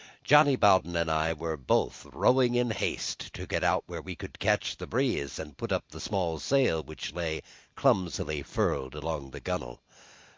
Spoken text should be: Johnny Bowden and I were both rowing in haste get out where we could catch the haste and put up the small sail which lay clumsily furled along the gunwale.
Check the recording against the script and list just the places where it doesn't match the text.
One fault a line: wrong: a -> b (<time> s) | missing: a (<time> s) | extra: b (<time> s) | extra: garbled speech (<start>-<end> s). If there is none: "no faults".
extra: to (3.4 s)
wrong: haste -> breeze (4.9 s)